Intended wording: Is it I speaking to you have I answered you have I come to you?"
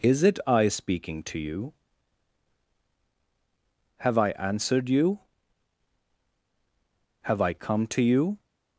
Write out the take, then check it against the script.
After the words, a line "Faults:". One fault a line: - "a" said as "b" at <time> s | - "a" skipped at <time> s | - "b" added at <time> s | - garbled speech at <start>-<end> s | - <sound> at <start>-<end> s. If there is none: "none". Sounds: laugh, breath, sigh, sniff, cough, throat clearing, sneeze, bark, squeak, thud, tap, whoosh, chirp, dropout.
Is it I speaking to you have I answered you have I come to you?"
Faults:
none